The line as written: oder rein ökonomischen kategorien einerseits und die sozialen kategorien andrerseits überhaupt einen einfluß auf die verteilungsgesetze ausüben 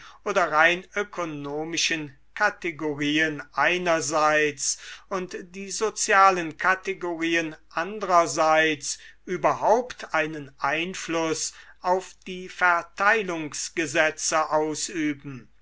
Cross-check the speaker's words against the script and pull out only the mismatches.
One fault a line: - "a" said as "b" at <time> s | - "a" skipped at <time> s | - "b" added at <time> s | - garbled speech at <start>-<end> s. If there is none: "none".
none